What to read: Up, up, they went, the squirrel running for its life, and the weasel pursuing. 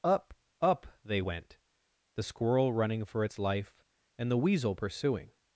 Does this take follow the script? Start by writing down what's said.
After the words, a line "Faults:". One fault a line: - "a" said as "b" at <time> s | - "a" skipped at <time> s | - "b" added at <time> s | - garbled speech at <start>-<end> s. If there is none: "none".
Up, up, they went, the squirrel running for its life, and the weasel pursuing.
Faults:
none